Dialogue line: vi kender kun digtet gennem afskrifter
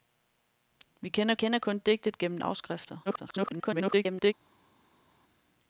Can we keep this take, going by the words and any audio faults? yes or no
no